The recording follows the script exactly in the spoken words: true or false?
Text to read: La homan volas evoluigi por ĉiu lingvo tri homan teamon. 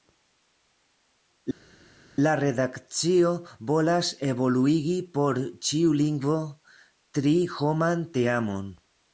false